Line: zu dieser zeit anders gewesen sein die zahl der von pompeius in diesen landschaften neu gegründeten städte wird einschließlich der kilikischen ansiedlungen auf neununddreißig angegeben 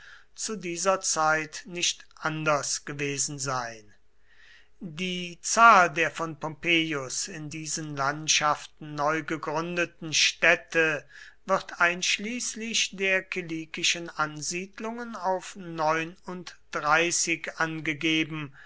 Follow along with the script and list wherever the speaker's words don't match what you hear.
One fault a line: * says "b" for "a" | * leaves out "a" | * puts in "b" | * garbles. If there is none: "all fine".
* puts in "nicht"